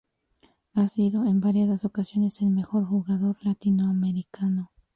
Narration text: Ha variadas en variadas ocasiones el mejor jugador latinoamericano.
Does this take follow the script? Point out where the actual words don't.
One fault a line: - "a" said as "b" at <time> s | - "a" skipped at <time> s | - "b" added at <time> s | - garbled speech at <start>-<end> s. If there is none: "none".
- "variadas" said as "sido" at 0.8 s